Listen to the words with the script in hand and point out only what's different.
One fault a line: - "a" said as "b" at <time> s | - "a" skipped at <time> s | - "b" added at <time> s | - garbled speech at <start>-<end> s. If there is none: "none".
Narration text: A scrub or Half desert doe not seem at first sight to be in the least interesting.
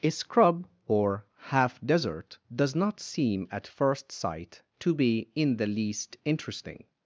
- "doe" said as "does" at 2.5 s